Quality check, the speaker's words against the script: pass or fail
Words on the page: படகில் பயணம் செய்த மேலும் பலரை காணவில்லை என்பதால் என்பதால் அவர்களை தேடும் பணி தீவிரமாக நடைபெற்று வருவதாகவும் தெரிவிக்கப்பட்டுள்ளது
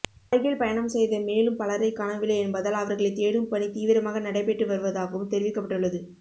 fail